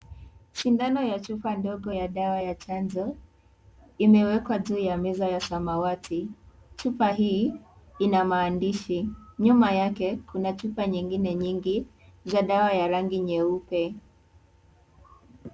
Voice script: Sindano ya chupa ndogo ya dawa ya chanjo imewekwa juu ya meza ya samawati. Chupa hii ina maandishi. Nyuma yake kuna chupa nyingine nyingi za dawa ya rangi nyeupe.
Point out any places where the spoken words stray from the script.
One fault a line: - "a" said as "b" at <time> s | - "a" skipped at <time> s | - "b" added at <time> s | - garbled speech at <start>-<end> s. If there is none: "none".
none